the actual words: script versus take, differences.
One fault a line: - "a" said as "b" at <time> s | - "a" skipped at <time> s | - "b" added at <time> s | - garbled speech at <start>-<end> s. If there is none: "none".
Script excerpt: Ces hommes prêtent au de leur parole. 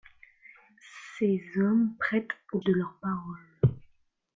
none